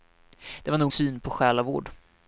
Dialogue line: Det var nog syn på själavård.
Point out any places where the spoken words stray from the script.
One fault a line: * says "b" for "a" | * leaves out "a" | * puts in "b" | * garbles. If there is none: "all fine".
all fine